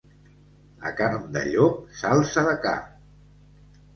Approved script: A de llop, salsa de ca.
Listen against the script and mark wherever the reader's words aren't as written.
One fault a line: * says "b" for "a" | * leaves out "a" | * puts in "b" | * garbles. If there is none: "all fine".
* puts in "carn"